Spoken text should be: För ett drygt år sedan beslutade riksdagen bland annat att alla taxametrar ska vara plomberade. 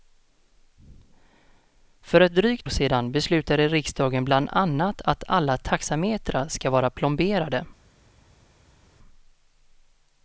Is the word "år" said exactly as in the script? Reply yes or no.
no